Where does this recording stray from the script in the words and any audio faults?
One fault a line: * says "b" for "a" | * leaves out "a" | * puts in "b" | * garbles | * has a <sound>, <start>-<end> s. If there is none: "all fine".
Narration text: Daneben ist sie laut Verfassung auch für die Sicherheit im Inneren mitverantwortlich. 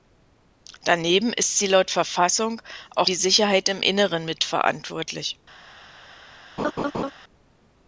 * leaves out "für"
* has a laugh, 6.6-7.1 s